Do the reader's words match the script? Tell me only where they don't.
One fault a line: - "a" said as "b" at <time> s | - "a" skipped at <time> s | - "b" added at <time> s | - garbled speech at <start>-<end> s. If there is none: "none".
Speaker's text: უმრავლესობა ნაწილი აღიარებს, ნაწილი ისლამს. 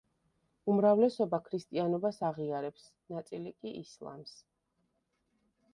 - "ნაწილი" said as "ქრისტიანობას" at 1.5 s
- "კი" added at 3.6 s